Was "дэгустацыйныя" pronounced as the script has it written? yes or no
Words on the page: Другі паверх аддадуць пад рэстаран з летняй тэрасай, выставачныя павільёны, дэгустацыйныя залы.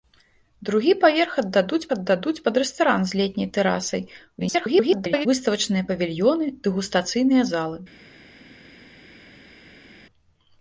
yes